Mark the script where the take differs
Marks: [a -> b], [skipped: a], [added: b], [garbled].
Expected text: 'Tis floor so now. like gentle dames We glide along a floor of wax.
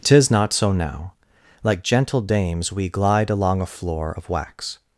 'Tis [floor -> not] so now. like gentle dames We glide along a floor of wax.